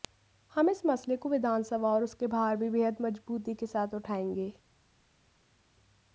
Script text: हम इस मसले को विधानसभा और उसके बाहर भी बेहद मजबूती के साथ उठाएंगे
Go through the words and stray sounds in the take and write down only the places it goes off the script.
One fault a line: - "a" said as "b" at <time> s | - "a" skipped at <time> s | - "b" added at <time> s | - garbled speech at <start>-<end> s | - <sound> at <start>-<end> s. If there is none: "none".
none